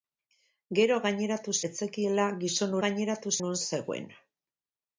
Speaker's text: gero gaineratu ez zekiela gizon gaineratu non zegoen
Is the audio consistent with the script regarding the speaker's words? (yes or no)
yes